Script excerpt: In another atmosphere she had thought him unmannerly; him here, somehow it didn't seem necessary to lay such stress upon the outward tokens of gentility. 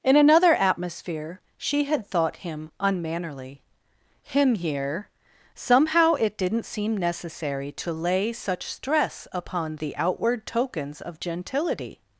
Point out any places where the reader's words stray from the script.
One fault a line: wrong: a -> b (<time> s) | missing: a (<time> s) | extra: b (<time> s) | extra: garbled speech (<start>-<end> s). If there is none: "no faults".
no faults